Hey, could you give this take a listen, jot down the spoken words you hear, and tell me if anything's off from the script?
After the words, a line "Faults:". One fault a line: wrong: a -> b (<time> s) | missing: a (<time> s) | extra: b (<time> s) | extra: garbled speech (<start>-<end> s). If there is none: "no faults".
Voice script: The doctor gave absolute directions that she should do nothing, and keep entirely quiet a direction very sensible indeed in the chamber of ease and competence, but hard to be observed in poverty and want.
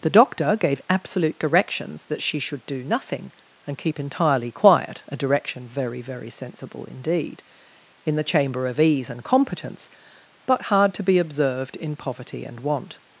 The doctor gave absolute directions that she should do nothing, and keep entirely quiet a direction very very sensible indeed in the chamber of ease and competence, but hard to be observed in poverty and want.
Faults:
extra: very (6.0 s)